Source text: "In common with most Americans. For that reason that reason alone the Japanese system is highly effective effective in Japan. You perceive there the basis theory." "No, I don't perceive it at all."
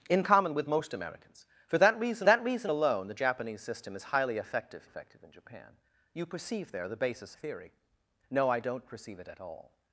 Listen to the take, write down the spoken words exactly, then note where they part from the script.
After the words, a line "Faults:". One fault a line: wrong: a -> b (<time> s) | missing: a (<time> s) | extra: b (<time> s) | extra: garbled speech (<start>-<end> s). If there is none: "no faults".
"In common with most Americans. For that reason that reason alone the Japanese system is highly effective effective in Japan. You perceive there the basis theory." "No, I don't perceive it at all."
Faults:
no faults